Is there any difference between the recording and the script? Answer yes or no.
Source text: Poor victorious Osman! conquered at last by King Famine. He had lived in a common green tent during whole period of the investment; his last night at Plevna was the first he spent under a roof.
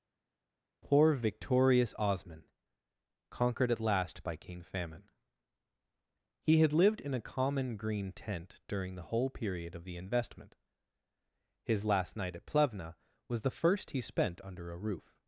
yes